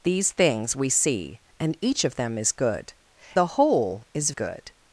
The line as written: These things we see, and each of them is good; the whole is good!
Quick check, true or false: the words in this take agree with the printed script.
true